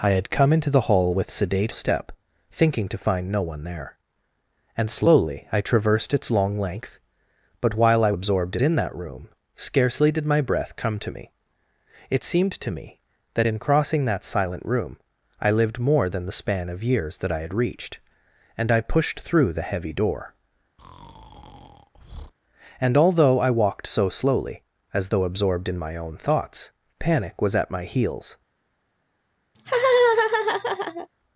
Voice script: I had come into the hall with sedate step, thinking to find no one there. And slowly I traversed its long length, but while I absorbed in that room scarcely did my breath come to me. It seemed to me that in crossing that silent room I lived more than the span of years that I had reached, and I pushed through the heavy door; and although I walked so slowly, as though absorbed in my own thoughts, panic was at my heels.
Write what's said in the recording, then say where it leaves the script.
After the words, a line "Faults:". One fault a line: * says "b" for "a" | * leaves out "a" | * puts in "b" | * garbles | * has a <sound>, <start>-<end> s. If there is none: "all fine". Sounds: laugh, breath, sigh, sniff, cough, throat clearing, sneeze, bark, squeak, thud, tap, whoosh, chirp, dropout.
I had come into the hall with sedate step, thinking to find no one there. And slowly I traversed its long length, but while I absorbed in that room scarcely did my breath come to me. It seemed to me that in crossing that silent room I lived more than the span of years that I had reached, and I pushed through the heavy door; and although I walked so slowly, as though absorbed in my own thoughts, panic was at my heels.
Faults:
* has a breath, 20.8-22.3 s
* has a laugh, 29.5-31.1 s